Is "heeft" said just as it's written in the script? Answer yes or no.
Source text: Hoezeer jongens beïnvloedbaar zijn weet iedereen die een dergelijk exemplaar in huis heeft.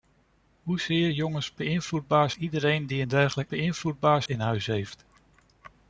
yes